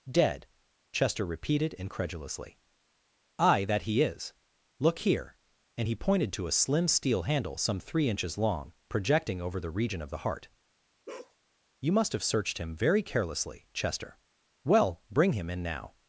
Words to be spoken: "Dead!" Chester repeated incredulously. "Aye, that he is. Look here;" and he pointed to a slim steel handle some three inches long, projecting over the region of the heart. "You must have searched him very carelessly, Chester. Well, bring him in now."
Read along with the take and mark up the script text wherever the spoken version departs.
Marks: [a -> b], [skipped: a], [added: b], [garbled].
"Dead!" Chester repeated incredulously. "Aye, that he is. Look here;" and he pointed to a slim steel handle some three inches long, projecting over the region of the heart. "You must have searched him very carelessly, Chester. Well, bring him in now."